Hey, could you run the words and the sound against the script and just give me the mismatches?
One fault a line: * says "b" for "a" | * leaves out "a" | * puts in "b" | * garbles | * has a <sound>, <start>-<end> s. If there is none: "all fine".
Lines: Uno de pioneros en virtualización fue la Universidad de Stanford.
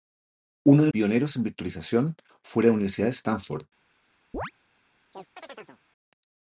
* has a chirp, 4.3-4.5 s
* has a chirp, 5.1-5.8 s